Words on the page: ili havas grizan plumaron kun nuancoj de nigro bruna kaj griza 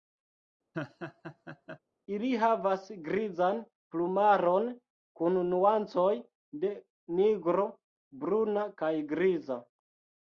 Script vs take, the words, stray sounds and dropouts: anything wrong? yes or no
yes